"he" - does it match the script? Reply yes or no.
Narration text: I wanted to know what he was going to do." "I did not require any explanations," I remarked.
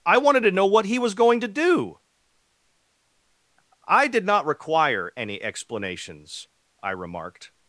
yes